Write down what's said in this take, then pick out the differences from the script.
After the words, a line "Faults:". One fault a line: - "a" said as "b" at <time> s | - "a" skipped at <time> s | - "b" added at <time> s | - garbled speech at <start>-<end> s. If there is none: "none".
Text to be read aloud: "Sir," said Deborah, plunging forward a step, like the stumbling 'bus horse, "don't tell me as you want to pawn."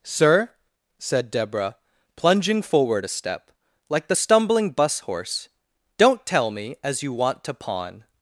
"Sir," said Deborah, plunging forward a step, like the stumbling 'bus horse, "don't tell me as you want to pawn."
Faults:
none